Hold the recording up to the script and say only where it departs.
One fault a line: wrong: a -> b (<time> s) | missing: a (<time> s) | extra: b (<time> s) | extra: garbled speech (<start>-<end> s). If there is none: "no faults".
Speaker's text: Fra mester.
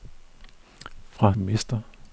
no faults